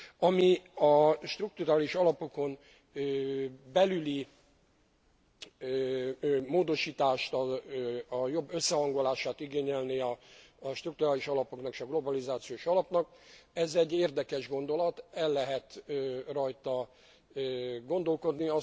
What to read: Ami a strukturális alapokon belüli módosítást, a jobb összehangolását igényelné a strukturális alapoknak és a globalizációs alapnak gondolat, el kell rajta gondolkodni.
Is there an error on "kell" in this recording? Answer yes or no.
yes